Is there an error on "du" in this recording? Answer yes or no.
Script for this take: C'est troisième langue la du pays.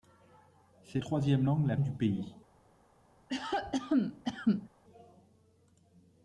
no